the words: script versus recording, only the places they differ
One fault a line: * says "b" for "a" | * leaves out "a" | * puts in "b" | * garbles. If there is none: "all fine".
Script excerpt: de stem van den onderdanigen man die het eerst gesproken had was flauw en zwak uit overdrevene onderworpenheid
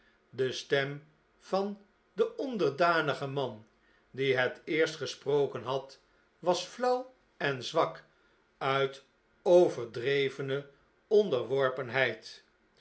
all fine